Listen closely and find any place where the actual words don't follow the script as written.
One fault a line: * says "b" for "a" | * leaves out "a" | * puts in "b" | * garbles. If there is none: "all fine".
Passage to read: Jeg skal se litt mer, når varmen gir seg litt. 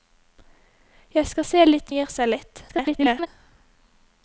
* leaves out "mer når varmen"
* garbles